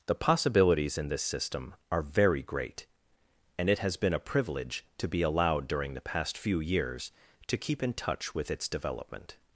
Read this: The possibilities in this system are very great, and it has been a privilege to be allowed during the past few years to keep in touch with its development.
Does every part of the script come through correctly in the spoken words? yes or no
yes